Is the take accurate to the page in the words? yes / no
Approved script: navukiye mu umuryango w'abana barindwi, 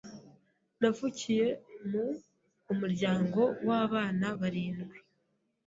yes